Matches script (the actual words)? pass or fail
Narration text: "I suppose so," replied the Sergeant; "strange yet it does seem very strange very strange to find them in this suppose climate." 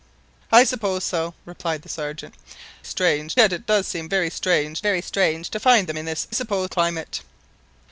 pass